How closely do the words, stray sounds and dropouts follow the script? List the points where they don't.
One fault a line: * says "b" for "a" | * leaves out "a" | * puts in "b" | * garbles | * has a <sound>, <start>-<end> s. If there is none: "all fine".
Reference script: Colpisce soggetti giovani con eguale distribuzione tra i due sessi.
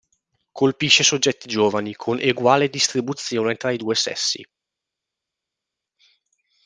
all fine